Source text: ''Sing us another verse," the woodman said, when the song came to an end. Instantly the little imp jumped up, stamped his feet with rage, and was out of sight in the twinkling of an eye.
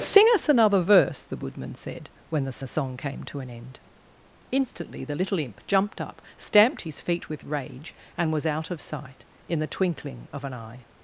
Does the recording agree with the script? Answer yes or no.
no